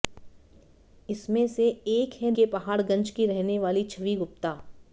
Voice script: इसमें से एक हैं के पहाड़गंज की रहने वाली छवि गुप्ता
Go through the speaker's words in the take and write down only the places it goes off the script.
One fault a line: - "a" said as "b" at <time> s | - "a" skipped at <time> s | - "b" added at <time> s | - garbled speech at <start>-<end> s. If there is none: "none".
none